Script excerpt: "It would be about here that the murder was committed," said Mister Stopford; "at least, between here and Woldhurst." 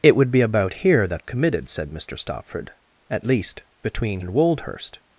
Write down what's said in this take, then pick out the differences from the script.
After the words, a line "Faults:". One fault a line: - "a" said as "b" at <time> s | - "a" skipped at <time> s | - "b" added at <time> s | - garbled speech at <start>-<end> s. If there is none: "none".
"It would be about here that committed," said Mister Stopford; "at least, between and Woldhurst."
Faults:
- "the murder was" skipped at 1.3 s
- "here" skipped at 4.2 s